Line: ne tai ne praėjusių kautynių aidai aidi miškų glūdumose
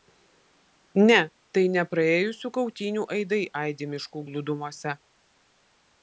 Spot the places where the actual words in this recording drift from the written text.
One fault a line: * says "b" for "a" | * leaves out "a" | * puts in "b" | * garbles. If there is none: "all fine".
all fine